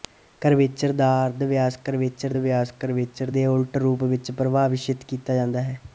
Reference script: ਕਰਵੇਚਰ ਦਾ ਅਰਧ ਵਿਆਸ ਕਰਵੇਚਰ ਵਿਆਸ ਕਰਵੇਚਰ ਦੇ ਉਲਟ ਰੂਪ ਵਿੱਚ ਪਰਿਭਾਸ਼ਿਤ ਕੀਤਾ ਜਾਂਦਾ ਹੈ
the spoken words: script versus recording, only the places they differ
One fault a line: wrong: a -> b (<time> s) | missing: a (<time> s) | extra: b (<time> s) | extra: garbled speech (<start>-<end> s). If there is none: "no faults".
no faults